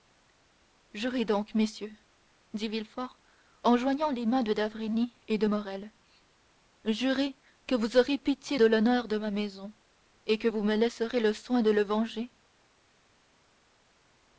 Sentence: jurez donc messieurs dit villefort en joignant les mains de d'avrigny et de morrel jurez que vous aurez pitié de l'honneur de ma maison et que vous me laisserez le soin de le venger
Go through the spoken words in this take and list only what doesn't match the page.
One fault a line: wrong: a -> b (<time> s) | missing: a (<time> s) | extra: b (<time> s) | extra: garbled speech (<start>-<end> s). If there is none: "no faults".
no faults